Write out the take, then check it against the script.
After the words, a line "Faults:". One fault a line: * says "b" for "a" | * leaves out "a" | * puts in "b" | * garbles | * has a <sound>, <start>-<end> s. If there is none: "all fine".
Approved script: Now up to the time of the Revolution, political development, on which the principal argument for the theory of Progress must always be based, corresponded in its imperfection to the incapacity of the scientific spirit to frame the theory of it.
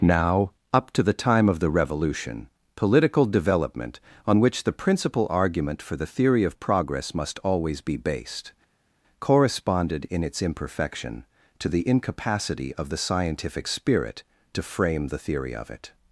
Now up to the time of the Revolution, political development, on which the principal argument for the theory of Progress must always be based, corresponded in its imperfection to the incapacity of the scientific spirit to frame the theory of it.
Faults:
all fine